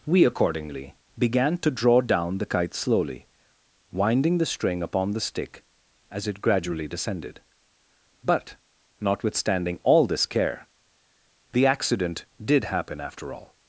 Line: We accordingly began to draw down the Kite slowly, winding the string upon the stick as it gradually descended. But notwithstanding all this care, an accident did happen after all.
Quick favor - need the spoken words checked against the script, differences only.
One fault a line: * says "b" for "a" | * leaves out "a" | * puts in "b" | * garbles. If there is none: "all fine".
* says "the" for "an"